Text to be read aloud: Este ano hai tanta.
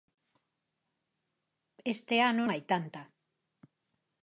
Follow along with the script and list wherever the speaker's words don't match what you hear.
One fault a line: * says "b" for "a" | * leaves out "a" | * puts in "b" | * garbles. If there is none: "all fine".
all fine